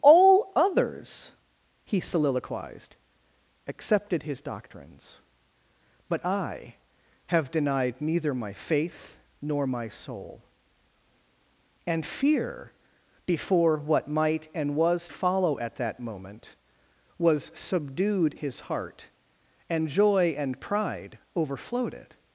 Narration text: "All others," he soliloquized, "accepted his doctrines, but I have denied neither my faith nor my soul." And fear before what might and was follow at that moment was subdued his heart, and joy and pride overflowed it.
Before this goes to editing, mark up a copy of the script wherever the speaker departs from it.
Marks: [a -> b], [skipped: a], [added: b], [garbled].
"All others," he soliloquized, "accepted his doctrines, but I have denied neither my faith nor my soul." And fear before what might and was follow at that moment was subdued his heart, and joy and pride overflowed it.